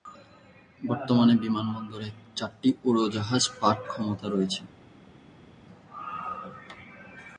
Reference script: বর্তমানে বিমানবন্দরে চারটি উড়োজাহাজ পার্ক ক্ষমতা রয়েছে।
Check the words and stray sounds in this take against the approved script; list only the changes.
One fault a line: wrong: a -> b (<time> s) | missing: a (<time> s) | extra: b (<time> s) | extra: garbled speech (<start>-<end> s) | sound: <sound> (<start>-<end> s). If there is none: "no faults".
no faults